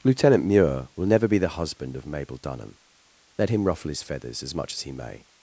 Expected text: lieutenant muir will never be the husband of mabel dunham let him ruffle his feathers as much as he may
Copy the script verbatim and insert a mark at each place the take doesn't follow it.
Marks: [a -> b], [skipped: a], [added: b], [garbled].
lieutenant muir will never be the husband of mabel dunham let him ruffle his feathers as much as he may